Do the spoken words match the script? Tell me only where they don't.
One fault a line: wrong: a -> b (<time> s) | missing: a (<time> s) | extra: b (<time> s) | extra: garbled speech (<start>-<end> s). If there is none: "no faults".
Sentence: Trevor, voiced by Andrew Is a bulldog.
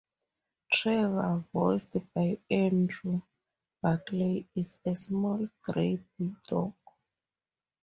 extra: Barclay (3.8 s)
extra: small grey (4.9 s)